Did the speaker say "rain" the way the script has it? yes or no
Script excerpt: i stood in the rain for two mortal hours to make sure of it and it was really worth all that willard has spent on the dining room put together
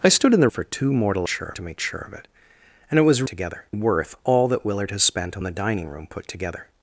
no